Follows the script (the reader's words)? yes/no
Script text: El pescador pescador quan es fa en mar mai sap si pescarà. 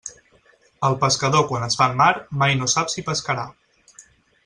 no